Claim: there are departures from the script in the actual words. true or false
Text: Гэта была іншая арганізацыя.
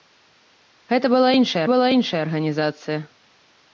true